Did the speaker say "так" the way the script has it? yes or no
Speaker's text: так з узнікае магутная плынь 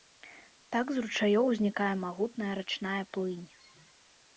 yes